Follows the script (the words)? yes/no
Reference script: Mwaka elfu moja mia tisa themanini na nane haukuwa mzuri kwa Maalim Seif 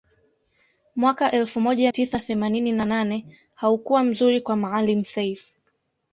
no